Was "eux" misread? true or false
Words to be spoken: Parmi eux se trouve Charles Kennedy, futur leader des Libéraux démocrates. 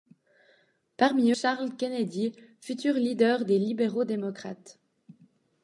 true